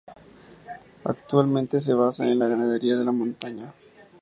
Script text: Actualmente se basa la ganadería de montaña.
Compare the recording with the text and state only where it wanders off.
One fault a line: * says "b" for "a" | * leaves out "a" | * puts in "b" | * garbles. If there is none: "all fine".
* puts in "en"